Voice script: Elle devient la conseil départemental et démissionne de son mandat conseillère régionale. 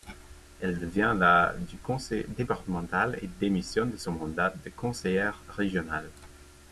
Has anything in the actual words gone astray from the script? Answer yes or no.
yes